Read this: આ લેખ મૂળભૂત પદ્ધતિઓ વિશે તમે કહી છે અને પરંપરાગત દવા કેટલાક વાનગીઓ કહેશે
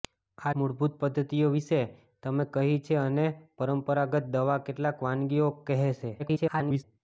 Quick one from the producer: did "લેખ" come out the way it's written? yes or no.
no